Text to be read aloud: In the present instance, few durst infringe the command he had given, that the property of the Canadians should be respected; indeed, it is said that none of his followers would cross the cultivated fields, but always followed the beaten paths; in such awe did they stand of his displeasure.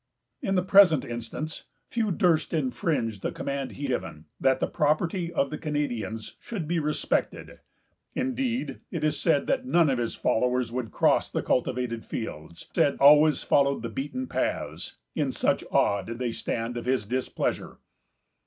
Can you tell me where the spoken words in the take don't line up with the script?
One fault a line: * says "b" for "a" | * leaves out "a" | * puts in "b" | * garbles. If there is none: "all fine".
* leaves out "had"
* says "said" for "but"